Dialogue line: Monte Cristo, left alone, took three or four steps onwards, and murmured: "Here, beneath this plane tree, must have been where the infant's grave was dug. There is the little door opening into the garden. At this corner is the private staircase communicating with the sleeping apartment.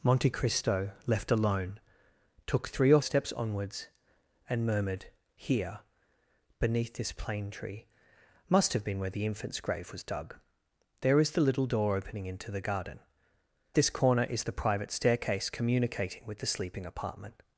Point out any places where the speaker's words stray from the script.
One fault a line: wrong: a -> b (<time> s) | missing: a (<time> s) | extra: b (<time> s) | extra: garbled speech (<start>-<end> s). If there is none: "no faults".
missing: four (3.0 s)
missing: At (13.0 s)